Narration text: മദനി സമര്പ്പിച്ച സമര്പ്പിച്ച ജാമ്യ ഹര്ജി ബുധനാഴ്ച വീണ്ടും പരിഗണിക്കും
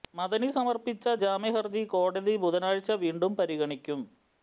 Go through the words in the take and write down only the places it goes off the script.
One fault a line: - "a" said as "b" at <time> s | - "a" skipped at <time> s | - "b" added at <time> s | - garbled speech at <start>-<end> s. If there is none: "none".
- "സമര്പ്പിച്ച" skipped at 1.1 s
- "കോടതി" added at 1.9 s